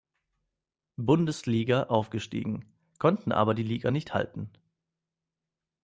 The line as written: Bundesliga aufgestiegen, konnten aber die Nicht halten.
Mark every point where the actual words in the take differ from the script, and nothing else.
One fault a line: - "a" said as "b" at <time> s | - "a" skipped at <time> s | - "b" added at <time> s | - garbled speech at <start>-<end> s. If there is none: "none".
- "Liga" added at 3.6 s